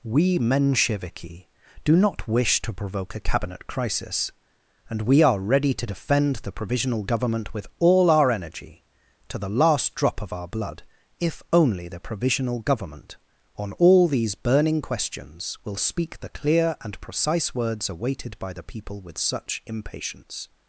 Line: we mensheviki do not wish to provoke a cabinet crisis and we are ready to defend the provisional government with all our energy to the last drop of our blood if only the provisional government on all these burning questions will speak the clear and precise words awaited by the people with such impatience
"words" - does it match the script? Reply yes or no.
yes